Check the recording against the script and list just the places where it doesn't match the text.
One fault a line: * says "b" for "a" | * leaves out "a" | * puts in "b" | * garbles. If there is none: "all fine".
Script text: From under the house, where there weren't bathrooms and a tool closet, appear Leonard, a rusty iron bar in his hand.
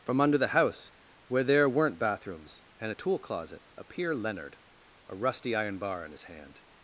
all fine